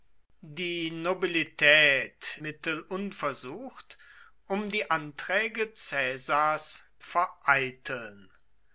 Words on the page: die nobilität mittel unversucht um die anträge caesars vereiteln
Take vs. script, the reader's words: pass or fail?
pass